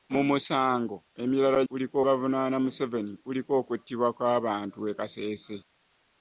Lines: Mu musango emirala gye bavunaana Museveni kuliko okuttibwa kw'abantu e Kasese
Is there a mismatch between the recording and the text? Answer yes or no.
yes